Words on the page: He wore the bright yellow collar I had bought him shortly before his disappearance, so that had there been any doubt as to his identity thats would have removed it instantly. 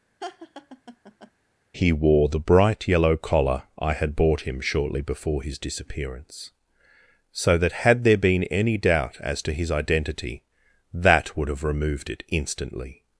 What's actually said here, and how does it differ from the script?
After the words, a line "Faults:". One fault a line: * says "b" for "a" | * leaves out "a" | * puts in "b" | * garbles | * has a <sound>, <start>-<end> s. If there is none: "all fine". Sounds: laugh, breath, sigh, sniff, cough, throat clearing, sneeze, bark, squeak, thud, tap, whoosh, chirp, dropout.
He wore the bright yellow collar I had bought him shortly before his disappearance, so that had there been any doubt as to his identity that would have removed it instantly.
Faults:
* has a laugh, 0.2-1.3 s
* says "that" for "thats"